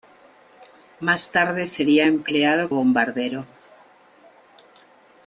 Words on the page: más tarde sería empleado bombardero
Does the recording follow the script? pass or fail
pass